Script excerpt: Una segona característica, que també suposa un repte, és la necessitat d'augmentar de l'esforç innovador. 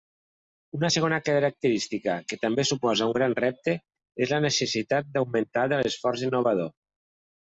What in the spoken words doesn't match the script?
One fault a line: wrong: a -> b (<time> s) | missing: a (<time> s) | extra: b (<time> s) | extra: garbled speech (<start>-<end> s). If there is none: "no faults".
extra: gran (3.2 s)